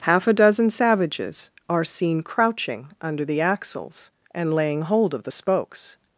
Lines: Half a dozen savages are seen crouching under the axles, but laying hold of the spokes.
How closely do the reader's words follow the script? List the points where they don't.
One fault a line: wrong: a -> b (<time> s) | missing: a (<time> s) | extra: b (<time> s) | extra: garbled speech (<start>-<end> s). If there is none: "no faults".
wrong: but -> and (4.3 s)